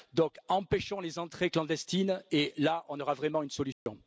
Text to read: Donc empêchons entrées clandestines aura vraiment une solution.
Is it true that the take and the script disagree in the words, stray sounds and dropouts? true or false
true